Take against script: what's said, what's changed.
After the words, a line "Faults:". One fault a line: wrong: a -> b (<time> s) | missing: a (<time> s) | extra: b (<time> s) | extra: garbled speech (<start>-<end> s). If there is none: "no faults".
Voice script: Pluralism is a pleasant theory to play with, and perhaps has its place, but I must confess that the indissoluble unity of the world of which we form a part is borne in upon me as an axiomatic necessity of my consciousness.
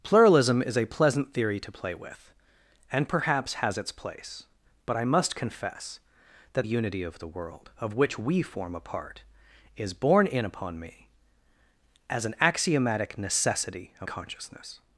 Pluralism is a pleasant theory to play with, and perhaps has its place, but I must confess that unity of the world of which we form a part is borne in upon me as an axiomatic necessity of consciousness.
Faults:
missing: the indissoluble (6.7 s)
missing: my (14.1 s)